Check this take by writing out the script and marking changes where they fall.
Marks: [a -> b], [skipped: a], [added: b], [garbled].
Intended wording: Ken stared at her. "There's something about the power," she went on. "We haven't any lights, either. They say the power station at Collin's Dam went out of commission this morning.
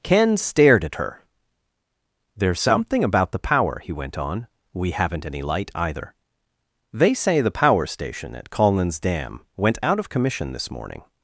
Ken stared at her. "There's something about the power," [she -> he] went on. "We haven't any [lights, -> light] either. They say the power station at Collin's Dam went out of commission this morning.